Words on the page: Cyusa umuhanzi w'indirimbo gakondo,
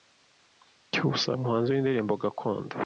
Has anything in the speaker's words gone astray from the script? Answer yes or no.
no